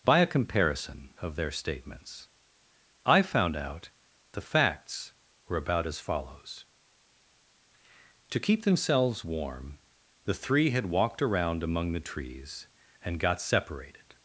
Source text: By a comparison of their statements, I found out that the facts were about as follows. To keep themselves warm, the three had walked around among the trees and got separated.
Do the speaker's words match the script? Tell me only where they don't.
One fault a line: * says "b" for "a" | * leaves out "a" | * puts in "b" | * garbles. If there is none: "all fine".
* leaves out "that"